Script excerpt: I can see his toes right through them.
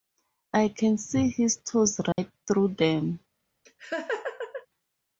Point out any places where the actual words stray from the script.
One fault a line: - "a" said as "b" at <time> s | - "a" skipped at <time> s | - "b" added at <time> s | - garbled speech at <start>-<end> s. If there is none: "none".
none